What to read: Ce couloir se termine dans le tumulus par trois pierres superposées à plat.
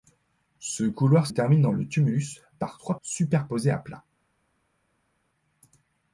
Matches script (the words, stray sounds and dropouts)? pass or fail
fail